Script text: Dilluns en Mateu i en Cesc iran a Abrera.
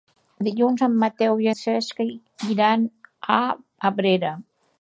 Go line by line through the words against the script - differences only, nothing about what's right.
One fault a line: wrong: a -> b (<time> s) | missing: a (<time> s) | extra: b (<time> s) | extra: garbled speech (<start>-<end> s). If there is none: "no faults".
missing: en (1.5 s)